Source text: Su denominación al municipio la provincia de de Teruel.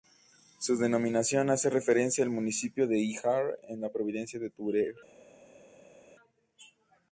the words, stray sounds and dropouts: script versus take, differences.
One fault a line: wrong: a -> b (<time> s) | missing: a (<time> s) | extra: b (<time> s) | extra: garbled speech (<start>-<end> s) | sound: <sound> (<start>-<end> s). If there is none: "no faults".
extra: hace referencia (1.5 s)
extra: de Híjar en (2.9 s)
missing: de (4.5 s)